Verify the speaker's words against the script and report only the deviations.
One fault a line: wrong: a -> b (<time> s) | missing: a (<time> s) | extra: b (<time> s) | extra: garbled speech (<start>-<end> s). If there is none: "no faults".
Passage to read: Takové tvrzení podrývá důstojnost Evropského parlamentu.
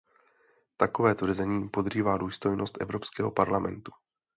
no faults